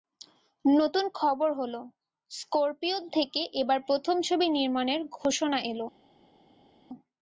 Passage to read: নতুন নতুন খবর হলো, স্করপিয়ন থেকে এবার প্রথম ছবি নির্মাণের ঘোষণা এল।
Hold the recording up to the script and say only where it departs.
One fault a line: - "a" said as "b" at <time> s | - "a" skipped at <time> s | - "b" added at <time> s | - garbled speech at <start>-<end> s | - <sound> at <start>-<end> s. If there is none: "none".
- "নতুন" skipped at 1.1 s